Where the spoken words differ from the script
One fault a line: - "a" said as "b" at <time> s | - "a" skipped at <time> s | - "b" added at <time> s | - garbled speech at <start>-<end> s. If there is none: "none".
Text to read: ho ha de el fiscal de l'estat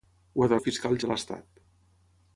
none